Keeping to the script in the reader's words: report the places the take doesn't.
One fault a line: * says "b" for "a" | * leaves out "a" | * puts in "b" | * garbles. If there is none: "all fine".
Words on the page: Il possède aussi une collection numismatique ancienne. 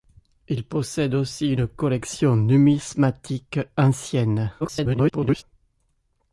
* garbles